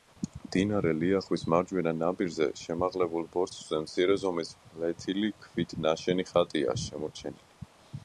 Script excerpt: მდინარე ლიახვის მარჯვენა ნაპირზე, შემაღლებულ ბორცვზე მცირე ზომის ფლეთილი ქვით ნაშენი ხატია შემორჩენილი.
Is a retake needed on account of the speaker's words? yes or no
no